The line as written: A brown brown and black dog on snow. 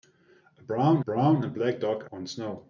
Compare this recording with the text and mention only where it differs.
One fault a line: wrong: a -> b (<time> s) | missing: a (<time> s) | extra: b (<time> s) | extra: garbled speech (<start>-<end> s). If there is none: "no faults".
no faults